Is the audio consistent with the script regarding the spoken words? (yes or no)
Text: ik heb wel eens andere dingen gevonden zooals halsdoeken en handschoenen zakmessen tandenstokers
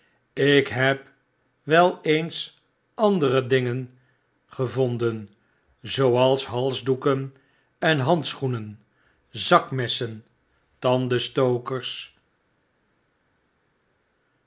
yes